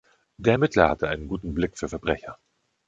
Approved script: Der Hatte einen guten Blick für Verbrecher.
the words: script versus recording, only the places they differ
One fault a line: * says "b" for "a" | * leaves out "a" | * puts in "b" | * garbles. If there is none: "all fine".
* puts in "Ermittler"